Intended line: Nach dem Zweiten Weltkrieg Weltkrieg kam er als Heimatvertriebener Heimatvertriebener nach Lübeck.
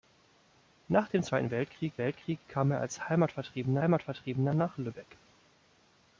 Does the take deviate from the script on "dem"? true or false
false